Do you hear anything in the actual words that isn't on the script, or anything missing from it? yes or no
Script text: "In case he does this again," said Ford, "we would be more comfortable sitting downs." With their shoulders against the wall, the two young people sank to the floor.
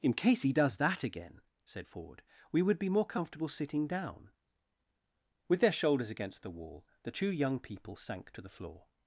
yes